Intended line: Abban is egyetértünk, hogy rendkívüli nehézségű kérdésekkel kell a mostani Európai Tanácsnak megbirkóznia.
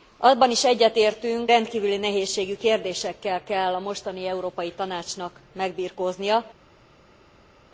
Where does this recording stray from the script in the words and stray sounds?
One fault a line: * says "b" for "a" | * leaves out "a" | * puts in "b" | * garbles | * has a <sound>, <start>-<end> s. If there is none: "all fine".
* leaves out "hogy"